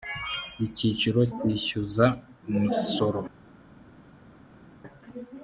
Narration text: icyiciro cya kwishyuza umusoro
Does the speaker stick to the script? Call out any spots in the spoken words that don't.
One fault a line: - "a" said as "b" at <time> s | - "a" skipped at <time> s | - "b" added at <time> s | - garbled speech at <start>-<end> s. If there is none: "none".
- "cya" skipped at 1.2 s